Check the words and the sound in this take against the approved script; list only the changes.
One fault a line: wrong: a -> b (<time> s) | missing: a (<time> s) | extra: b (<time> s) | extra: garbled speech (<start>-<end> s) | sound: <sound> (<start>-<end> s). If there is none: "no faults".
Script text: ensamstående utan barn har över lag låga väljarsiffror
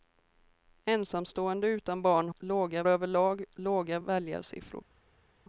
wrong: har -> låga (2.4 s)